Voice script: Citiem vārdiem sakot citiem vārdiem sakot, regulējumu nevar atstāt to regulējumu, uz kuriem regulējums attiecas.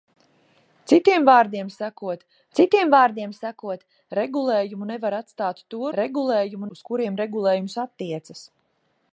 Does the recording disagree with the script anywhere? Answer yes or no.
no